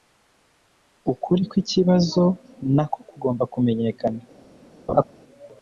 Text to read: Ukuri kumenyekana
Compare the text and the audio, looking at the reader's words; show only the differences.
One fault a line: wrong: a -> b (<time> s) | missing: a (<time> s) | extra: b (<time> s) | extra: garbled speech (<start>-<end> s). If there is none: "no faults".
extra: kwikibazo nako kugomba (1.5 s)